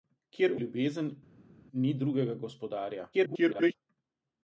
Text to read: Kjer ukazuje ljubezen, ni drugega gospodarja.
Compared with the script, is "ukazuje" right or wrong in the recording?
wrong